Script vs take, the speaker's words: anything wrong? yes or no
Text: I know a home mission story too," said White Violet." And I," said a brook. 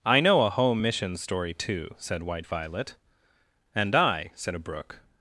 no